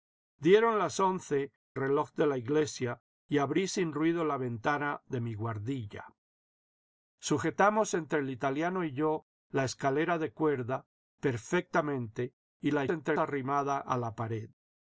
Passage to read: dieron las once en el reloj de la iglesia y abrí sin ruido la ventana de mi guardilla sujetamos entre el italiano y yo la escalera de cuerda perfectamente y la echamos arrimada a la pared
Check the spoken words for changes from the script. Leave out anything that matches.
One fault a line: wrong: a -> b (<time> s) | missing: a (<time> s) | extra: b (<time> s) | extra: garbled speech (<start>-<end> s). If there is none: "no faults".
missing: en el (1.5 s)
wrong: echamos -> entre (12.9 s)